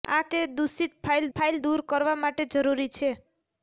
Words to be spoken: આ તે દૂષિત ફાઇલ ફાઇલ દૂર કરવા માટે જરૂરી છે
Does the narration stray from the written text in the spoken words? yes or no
no